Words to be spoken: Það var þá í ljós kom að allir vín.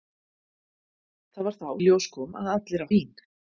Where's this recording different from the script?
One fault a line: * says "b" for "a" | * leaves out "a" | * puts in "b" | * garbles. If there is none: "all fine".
all fine